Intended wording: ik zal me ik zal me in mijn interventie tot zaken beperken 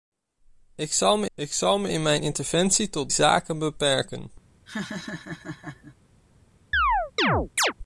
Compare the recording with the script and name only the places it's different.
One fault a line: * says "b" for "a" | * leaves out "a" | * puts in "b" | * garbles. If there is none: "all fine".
all fine